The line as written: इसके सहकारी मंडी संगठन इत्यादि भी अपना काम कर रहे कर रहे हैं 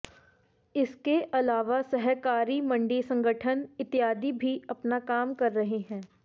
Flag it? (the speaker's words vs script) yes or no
yes